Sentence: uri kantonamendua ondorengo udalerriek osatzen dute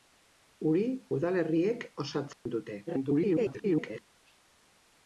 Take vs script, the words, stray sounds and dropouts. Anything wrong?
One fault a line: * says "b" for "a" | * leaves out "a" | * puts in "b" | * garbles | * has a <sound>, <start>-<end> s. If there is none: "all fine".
* leaves out "kantonamendua ondorengo"
* has a dropout, 2.3-2.5 s
* garbles